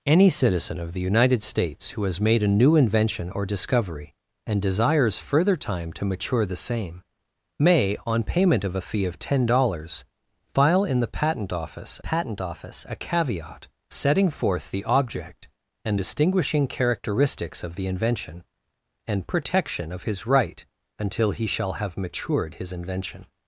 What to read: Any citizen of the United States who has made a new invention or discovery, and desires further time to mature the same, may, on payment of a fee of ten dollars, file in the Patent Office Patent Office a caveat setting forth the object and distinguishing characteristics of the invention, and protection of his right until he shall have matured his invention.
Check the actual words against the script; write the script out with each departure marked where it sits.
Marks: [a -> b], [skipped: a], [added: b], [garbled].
Any citizen of the United States who has made a new invention or discovery, and desires further time to mature the same, may, on payment of a fee of ten dollars, file in the Patent Office Patent Office a caveat setting forth the object and distinguishing characteristics of the invention, and protection of his right until he shall have matured his invention.